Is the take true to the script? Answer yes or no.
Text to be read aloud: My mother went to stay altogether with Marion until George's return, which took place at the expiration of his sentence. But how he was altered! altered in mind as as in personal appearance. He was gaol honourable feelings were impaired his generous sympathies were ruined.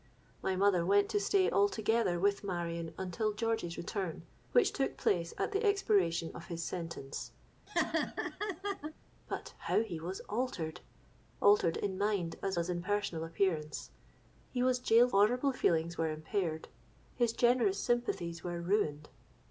yes